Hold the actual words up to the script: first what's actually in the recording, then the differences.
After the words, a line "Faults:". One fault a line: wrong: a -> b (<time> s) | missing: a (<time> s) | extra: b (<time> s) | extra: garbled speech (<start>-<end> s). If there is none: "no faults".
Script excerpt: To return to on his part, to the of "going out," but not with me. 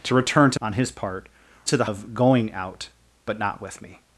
To return to on his part, to the of "going out," but not with me.
Faults:
no faults